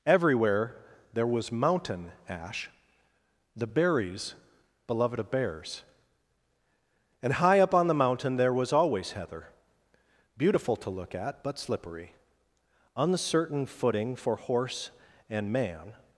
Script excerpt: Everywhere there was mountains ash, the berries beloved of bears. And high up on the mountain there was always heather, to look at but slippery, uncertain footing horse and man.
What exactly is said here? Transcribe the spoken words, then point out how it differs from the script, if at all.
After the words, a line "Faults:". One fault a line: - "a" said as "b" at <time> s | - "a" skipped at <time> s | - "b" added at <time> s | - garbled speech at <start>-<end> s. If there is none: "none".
Everywhere there was mountain ash, the berries beloved of bears. And high up on the mountain there was always heather, beautiful to look at but slippery, uncertain footing for horse and man.
Faults:
- "mountains" said as "mountain" at 1.5 s
- "beautiful" added at 10.4 s
- "for" added at 14.1 s